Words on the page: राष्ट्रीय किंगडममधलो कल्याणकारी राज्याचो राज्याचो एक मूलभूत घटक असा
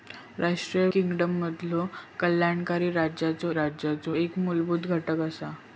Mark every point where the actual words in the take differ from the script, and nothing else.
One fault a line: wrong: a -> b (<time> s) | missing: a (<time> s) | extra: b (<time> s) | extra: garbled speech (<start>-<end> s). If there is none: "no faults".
no faults